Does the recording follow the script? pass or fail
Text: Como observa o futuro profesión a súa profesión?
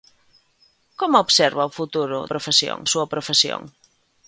pass